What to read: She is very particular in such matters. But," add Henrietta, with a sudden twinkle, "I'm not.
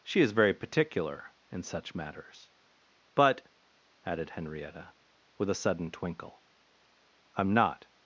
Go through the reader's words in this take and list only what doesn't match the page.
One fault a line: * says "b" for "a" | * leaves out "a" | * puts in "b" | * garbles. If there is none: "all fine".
* says "added" for "add"